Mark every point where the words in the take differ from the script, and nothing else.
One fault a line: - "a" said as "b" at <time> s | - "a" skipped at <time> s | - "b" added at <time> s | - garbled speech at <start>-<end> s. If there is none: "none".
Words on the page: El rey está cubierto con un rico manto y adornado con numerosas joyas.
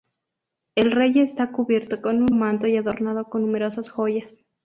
- "rico" skipped at 2.3 s